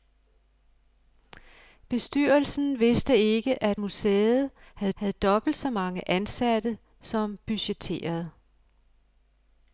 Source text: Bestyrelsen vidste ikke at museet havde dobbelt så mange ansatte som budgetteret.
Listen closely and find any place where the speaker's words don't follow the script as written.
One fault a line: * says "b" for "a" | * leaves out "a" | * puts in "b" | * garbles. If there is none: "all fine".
* puts in "havde"